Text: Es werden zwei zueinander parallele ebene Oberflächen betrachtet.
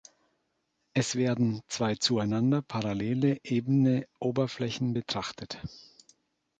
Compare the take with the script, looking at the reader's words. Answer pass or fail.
pass